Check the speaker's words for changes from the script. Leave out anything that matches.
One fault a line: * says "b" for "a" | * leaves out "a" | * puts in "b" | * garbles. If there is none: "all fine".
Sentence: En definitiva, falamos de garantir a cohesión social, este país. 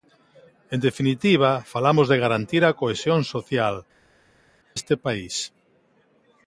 all fine